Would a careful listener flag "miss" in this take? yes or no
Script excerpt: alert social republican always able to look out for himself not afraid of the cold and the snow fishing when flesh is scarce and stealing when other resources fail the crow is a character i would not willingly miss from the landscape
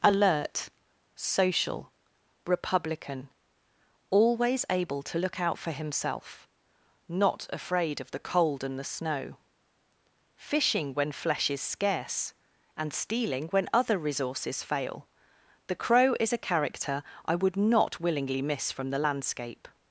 no